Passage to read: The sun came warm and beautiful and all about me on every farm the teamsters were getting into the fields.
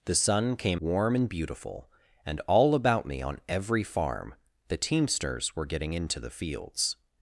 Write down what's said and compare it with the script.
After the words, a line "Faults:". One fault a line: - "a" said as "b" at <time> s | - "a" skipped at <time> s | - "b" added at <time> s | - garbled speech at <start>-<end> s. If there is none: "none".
The sun came warm and beautiful and all about me on every farm the teamsters were getting into the fields.
Faults:
none